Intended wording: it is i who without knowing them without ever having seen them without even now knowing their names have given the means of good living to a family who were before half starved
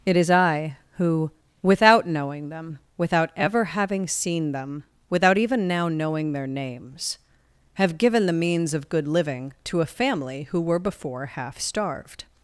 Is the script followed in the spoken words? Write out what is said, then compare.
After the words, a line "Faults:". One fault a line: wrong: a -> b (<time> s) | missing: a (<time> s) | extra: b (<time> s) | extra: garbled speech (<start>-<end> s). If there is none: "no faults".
it is i who without knowing them without ever having seen them without even now knowing their names have given the means of good living to a family who were before half starved
Faults:
no faults